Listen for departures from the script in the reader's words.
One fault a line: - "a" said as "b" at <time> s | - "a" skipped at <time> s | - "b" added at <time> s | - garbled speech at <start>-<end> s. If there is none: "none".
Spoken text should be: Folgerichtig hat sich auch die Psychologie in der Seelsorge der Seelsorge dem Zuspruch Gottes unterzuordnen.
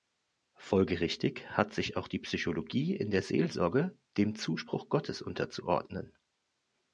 - "der Seelsorge" skipped at 4.0 s